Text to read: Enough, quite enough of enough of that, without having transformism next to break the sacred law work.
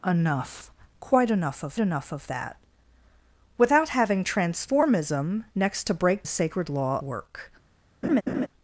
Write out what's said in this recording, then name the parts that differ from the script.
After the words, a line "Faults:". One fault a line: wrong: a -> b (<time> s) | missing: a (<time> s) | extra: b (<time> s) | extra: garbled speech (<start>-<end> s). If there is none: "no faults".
Enough, quite enough of enough of that, without having transformism next to break the sacred law work.
Faults:
no faults